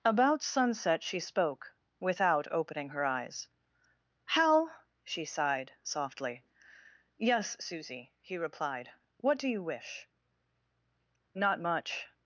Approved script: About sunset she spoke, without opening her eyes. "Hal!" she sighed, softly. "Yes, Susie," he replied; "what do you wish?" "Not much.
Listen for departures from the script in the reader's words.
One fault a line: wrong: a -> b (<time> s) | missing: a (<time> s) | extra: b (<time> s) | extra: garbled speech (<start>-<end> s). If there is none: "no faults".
no faults